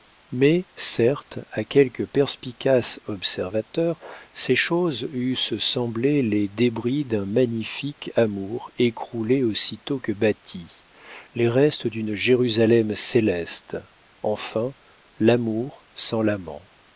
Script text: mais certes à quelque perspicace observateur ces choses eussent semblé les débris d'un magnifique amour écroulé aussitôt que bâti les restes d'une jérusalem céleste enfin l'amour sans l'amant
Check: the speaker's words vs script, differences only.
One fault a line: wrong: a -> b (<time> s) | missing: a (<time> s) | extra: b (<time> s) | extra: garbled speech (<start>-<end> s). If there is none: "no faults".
no faults